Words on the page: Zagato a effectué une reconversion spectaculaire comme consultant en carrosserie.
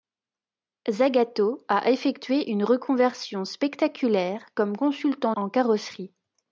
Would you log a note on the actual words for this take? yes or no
no